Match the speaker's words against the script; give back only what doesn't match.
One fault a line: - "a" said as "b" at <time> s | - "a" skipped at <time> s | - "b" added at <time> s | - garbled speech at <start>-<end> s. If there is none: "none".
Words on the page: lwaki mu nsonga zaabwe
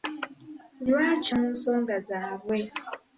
none